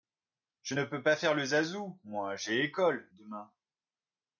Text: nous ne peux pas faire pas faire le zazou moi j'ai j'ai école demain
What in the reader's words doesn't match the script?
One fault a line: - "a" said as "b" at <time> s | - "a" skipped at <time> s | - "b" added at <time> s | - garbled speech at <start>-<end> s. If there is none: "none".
- "nous" said as "je" at 0.6 s
- "pas faire" skipped at 1.3 s
- "j'ai" skipped at 2.6 s